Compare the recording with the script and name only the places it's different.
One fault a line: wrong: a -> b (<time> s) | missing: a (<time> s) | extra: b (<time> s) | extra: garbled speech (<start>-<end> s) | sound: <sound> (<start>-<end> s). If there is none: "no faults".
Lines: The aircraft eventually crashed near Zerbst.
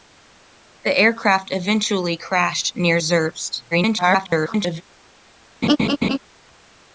extra: garbled speech (3.7-4.8 s)
sound: laugh (5.6-6.2 s)